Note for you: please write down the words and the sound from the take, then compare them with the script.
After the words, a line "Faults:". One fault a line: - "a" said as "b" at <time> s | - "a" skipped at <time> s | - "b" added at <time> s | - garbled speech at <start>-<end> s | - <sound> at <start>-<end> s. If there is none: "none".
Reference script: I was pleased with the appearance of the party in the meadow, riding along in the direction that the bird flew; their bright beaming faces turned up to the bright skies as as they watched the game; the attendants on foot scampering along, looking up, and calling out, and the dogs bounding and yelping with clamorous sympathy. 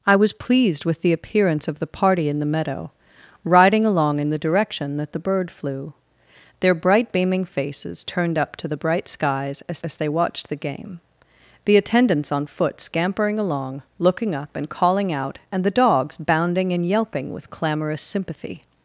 I was pleased with the appearance of the party in the meadow, riding along in the direction that the bird flew; their bright beaming faces turned up to the bright skies as as they watched the game; the attendants on foot scampering along, looking up, and calling out, and the dogs bounding and yelping with clamorous sympathy.
Faults:
none